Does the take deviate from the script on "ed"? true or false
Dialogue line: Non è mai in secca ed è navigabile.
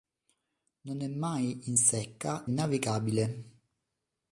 true